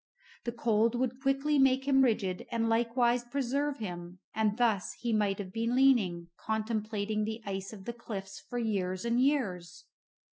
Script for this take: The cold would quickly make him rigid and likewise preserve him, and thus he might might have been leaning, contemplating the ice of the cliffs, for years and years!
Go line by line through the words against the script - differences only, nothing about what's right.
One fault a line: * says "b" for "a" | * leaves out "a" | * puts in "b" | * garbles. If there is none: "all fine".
* leaves out "might"